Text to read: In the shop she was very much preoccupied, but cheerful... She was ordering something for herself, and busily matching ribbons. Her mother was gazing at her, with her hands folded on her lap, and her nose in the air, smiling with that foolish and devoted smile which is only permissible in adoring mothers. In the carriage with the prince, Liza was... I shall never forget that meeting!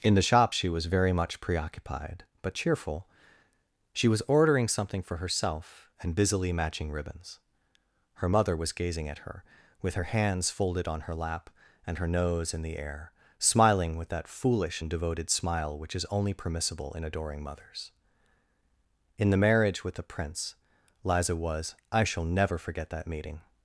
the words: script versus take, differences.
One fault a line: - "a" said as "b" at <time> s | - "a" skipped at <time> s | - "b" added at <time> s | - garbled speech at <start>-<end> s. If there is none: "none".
- "carriage" said as "marriage" at 19.4 s